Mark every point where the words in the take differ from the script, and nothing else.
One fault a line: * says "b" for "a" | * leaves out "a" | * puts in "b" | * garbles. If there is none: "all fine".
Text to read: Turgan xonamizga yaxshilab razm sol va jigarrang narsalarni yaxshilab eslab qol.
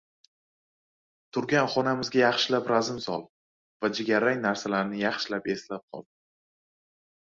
all fine